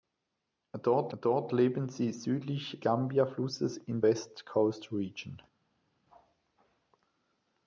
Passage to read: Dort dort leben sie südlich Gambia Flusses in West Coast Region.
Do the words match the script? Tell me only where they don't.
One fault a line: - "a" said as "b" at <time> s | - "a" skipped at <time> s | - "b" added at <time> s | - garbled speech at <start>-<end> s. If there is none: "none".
none